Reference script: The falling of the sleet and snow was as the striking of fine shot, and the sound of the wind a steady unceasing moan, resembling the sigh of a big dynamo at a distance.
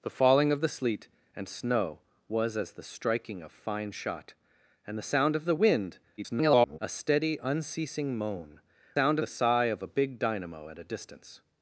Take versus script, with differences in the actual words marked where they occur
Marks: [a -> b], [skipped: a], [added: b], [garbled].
The falling of the sleet and snow was as the striking of fine shot, and the sound of the wind [garbled] a steady unceasing moan, [resembling -> sound] the sigh of a big dynamo at a distance.